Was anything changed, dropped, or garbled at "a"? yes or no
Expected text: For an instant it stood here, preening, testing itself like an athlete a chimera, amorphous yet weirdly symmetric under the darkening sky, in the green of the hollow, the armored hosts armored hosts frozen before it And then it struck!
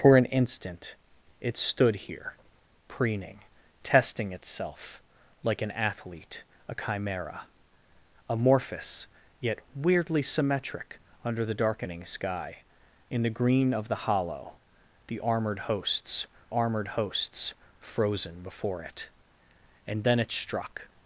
no